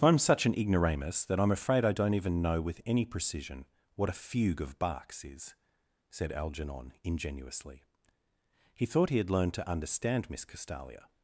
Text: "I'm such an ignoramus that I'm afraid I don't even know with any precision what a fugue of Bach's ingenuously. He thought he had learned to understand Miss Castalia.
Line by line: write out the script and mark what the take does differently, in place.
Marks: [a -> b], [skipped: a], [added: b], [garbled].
"I'm such an ignoramus that I'm afraid I don't even know with any precision what a fugue of Bach's [added: is said Algernon] ingenuously. He thought he had learned to understand Miss Castalia.